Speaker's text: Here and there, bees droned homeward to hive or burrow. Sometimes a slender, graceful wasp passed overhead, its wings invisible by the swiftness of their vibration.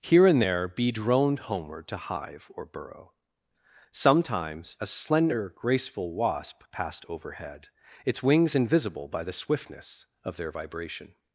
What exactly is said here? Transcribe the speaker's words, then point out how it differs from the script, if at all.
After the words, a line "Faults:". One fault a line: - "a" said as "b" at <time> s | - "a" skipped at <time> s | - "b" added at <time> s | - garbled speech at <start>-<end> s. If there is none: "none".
Here and there, bee droned homeward to hive or burrow. Sometimes a slender, graceful wasp passed overhead, its wings invisible by the swiftness of their vibration.
Faults:
- "bees" said as "bee" at 0.7 s